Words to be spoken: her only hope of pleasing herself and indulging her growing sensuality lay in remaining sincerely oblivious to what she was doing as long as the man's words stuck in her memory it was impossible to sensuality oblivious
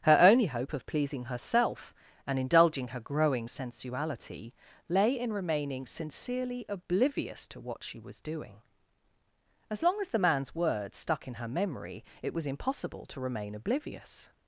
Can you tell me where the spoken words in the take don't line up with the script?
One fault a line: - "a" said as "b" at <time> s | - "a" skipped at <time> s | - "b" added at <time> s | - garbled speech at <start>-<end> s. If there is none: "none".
- "sensuality" said as "remain" at 13.2 s